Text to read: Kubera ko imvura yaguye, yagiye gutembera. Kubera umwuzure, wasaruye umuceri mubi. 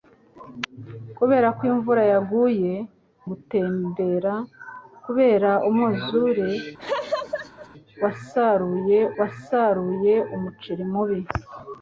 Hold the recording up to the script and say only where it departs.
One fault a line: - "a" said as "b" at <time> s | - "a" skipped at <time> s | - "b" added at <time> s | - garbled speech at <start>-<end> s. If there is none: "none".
- "yagiye" skipped at 2.7 s
- "wasaruye" added at 9.2 s